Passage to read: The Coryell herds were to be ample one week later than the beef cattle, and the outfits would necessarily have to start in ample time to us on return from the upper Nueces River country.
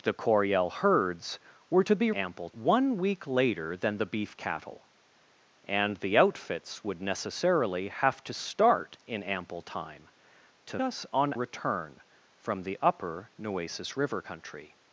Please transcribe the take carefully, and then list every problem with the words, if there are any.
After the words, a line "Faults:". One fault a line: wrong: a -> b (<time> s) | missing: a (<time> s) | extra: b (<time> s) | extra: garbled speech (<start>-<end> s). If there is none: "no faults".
The Coryell herds were to be ample one week later than the beef cattle, and the outfits would necessarily have to start in ample time to us on return from the upper Nueces River country.
Faults:
no faults